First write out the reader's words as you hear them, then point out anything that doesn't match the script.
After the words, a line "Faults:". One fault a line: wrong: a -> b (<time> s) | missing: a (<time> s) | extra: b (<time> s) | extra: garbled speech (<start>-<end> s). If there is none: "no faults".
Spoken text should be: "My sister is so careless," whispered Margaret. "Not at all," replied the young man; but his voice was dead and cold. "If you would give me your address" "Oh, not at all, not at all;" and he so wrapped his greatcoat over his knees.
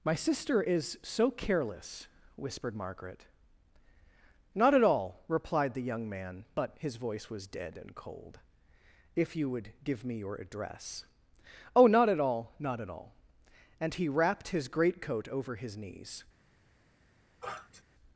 "My sister is so careless," whispered Margaret. "Not at all," replied the young man; but his voice was dead and cold. "If you would give me your address" "Oh, not at all, not at all;" and he wrapped his greatcoat over his knees.
Faults:
missing: so (14.1 s)